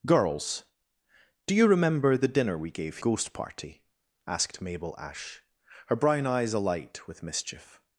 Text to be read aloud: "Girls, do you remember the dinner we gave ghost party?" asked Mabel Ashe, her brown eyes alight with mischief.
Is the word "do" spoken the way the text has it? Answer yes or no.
yes